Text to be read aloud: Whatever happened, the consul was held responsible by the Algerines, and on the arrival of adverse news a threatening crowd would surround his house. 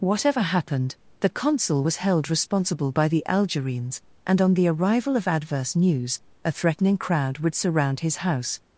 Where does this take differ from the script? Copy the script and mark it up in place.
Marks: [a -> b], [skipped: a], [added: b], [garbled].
Whatever happened, the consul was held responsible by the Algerines, and on the arrival of adverse news a threatening crowd would surround his house.